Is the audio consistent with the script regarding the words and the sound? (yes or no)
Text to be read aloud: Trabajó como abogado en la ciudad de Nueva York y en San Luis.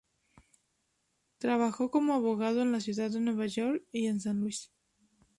yes